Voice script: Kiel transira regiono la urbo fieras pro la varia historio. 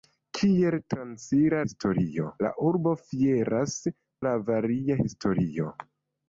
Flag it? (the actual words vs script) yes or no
yes